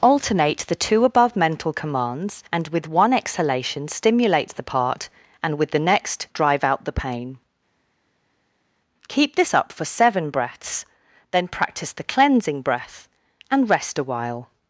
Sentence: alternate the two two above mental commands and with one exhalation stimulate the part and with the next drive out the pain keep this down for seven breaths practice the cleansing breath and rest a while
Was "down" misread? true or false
true